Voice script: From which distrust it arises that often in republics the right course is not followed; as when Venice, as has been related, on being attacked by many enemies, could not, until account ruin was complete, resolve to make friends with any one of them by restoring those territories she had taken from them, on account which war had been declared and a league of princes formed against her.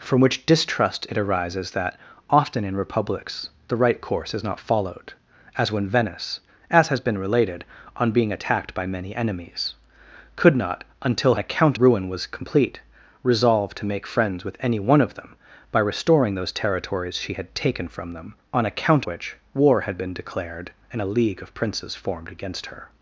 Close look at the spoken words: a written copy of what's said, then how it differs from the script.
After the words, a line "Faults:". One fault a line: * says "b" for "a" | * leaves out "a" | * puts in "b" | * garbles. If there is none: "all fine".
From which distrust it arises that often in republics the right course is not followed; as when Venice, as has been related, on being attacked by many enemies, could not, until account ruin was complete, resolve to make friends with any one of them by restoring those territories she had taken from them, on account which war had been declared and a league of princes formed against her.
Faults:
all fine